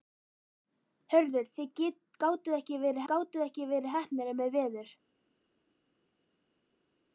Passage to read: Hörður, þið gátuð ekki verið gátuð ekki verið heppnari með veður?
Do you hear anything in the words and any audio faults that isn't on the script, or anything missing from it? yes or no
no